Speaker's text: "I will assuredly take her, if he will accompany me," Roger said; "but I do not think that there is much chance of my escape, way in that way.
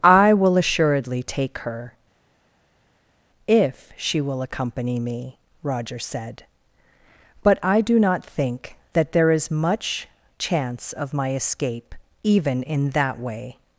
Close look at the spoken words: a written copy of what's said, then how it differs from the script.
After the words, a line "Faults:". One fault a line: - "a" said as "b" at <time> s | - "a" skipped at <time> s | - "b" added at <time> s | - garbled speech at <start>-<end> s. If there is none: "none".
"I will assuredly take her, if she will accompany me," Roger said; "but I do not think that there is much chance of my escape, even in that way.
Faults:
- "he" said as "she" at 4.0 s
- "way" said as "even" at 12.2 s